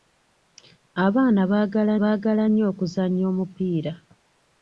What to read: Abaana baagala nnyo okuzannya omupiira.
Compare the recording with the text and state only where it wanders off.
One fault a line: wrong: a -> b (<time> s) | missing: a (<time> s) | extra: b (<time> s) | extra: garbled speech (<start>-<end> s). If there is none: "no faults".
extra: baagala (2.0 s)